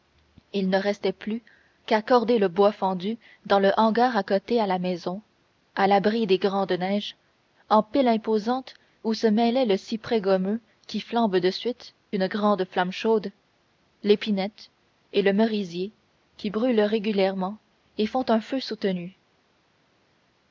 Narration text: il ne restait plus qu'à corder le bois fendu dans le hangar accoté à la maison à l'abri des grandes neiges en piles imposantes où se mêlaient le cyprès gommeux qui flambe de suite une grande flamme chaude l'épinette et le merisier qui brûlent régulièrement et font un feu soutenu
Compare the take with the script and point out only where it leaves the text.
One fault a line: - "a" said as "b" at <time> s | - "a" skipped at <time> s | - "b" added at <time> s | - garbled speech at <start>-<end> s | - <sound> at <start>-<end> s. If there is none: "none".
none